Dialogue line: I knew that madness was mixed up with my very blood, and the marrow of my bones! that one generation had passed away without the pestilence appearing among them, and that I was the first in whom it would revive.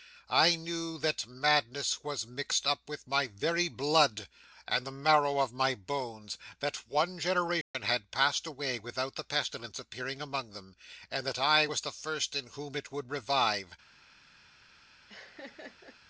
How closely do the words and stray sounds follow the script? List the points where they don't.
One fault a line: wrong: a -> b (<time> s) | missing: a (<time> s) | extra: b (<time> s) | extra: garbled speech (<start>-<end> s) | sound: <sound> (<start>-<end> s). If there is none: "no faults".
sound: dropout (7.6-7.7 s)
sound: laugh (15.1-16.0 s)